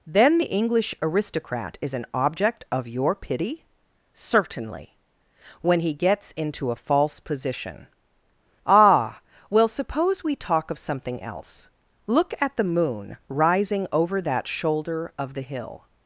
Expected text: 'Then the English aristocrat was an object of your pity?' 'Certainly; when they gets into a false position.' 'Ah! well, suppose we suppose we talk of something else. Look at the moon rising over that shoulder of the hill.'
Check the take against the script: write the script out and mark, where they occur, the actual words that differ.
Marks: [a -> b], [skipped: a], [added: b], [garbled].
'Then the English aristocrat [was -> is] an object of your pity?' 'Certainly; when [they -> he] gets into a false position.' 'Ah! well, suppose we [skipped: suppose we] talk of something else. Look at the moon rising over that shoulder of the hill.'